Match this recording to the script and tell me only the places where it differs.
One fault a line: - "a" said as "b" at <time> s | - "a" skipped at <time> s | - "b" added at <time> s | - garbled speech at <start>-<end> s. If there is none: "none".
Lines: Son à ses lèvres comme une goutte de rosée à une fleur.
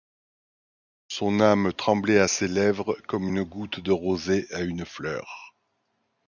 - "âme tremblait" added at 1.4 s